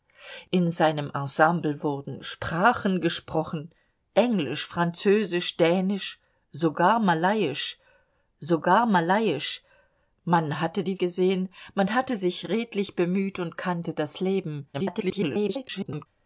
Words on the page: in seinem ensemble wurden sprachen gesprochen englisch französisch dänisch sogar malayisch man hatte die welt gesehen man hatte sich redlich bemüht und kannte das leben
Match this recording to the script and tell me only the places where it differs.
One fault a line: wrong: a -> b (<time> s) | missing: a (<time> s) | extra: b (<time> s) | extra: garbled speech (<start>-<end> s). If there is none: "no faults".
extra: sogar malayisch (8.4 s)
missing: welt (11.0 s)
extra: garbled speech (14.7-16.1 s)